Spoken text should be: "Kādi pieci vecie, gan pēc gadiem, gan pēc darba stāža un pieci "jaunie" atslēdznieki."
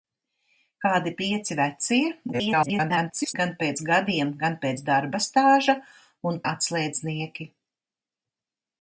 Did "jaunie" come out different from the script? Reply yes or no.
yes